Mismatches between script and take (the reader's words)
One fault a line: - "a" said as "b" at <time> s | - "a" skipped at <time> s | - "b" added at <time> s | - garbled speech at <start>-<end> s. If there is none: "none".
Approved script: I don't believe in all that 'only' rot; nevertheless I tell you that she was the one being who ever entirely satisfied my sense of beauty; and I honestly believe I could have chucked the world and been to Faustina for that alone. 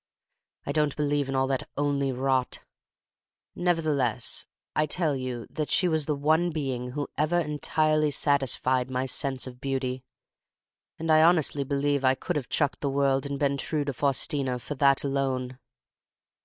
- "true" added at 13.6 s